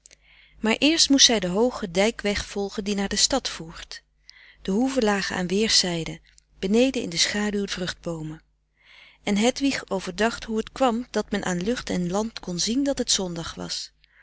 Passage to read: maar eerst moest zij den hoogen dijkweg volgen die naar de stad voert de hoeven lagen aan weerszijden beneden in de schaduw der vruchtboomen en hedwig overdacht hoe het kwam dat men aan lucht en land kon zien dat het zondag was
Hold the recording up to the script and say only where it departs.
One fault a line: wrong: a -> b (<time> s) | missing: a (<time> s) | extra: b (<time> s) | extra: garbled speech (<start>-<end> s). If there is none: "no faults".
missing: der (7.7 s)